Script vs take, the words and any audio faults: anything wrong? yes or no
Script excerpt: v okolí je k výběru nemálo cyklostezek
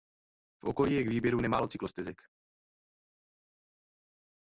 no